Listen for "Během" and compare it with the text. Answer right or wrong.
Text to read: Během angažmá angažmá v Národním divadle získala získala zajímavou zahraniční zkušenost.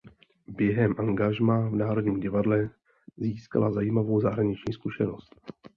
right